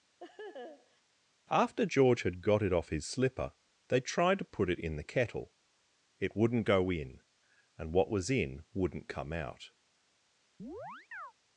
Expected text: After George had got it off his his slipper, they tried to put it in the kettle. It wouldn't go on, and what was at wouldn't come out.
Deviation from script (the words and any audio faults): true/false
true